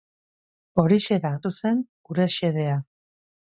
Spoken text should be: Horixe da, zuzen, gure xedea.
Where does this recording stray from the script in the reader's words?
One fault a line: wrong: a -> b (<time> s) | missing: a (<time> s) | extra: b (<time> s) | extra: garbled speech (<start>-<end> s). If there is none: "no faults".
no faults